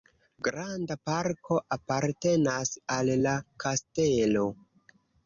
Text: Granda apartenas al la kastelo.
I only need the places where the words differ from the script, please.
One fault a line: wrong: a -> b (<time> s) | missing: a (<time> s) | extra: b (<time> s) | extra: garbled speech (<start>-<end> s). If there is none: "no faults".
extra: parko (1.1 s)